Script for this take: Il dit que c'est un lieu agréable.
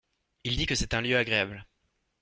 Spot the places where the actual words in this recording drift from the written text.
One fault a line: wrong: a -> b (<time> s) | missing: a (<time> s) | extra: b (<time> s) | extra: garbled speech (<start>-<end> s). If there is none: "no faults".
no faults